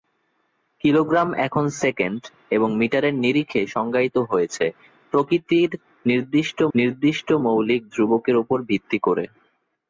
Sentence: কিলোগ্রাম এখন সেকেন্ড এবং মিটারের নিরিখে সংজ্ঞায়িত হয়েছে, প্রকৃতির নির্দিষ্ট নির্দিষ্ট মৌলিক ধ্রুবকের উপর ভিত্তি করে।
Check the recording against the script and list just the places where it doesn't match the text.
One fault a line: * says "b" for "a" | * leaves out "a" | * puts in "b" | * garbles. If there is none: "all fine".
all fine